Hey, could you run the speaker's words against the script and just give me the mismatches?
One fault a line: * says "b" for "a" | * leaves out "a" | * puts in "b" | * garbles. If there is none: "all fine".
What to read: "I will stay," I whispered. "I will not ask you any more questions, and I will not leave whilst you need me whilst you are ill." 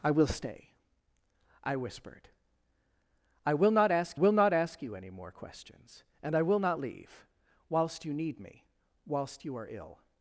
* puts in "will not ask"